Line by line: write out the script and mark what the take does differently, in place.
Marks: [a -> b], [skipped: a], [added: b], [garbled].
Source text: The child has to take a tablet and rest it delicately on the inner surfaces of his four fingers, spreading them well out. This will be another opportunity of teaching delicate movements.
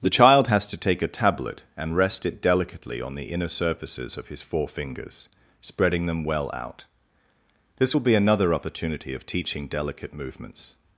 The child has to take a tablet and rest it delicately on the inner surfaces of his four fingers, spreading them well out. This will be another opportunity of teaching delicate movements.